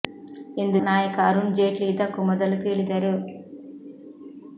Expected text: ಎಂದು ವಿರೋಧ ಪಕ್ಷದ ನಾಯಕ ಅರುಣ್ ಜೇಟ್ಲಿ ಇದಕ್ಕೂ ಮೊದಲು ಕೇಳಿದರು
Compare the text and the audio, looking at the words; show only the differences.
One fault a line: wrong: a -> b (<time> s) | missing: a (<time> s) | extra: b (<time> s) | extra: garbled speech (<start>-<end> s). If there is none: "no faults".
missing: ವಿರೋಧ ಪಕ್ಷದ (0.8 s)